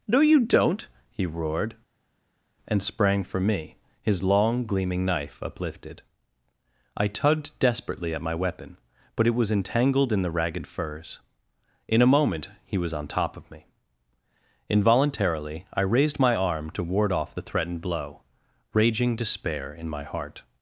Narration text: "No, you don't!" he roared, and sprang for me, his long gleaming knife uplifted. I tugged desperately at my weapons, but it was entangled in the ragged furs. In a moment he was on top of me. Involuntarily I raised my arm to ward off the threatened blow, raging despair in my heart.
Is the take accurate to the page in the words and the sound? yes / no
no